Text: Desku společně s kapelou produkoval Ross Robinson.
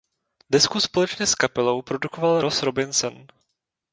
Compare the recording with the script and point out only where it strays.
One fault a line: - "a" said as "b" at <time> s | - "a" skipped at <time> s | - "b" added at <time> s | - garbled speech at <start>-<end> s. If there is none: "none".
none